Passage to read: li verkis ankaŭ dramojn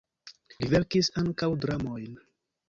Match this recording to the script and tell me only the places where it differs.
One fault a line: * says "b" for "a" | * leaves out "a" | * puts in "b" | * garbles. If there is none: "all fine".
all fine